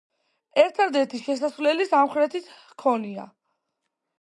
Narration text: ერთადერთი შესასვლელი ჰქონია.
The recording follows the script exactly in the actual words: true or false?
false